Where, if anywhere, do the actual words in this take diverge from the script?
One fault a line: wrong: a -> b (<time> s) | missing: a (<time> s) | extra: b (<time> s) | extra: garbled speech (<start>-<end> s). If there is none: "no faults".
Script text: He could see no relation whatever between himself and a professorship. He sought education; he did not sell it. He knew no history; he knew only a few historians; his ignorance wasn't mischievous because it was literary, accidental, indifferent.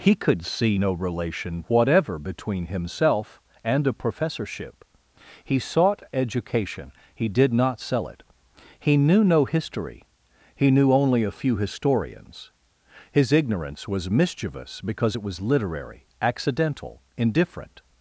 wrong: wasn't -> was (13.9 s)